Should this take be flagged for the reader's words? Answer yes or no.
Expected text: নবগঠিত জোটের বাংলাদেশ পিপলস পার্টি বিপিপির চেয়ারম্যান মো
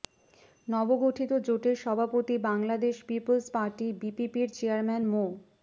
yes